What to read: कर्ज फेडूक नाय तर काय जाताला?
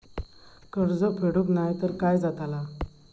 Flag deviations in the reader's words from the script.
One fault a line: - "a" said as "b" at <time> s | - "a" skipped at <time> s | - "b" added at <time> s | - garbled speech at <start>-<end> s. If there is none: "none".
none